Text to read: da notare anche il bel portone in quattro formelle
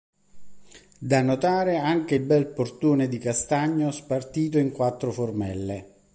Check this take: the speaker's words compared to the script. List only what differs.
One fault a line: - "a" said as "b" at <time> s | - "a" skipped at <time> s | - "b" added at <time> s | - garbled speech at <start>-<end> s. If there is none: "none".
- "di castagno spartito" added at 3.1 s